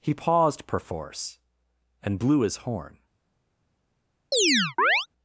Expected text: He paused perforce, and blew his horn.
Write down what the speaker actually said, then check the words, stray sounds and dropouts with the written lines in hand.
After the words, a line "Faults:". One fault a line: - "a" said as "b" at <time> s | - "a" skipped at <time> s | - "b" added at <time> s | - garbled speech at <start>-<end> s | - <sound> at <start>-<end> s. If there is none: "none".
He paused perforce, and blew his horn.
Faults:
- chirp at 4.3-5.1 s